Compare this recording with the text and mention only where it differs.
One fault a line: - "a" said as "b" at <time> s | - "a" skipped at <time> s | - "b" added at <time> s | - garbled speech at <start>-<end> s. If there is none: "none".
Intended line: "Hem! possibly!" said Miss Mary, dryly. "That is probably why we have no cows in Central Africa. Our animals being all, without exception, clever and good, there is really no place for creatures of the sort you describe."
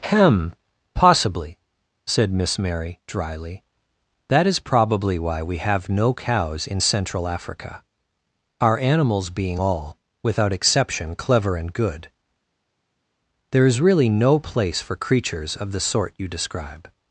none